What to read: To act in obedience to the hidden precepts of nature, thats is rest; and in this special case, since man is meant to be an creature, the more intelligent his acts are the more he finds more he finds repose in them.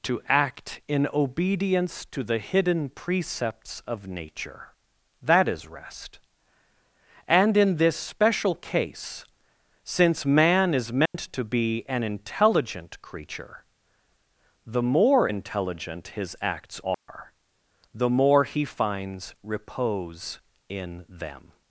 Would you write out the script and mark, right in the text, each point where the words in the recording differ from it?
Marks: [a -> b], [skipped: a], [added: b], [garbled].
To act in obedience to the hidden precepts of nature, [thats -> that] is rest; and in this special case, since man is meant to be an [added: intelligent] creature, the more intelligent his acts are the more he finds [skipped: more he finds] repose in them.